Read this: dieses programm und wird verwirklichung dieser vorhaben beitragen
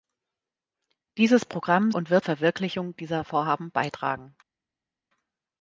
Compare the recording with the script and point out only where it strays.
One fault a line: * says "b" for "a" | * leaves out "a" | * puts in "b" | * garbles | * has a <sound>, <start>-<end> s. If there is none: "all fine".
all fine